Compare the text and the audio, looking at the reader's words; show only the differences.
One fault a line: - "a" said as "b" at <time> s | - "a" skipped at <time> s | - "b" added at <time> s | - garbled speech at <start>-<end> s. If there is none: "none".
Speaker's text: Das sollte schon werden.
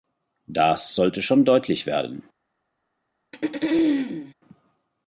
- "deutlich" added at 1.4 s